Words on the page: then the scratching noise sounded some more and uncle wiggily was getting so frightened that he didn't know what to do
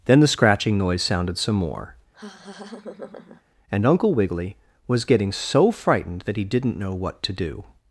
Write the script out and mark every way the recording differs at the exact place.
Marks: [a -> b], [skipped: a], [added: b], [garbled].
then the scratching noise sounded some more and uncle wiggily was getting so frightened that he didn't know what to do